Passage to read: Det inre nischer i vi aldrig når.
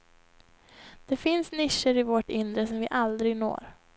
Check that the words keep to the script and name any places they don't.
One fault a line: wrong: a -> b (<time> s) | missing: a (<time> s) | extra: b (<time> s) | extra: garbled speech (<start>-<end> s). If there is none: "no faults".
wrong: inre -> finns (1.2 s)
extra: vårt inre som (2.0 s)